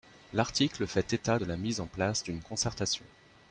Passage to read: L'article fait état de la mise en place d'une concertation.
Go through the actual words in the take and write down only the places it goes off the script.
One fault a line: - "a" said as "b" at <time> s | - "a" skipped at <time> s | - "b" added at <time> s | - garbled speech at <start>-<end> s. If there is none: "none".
none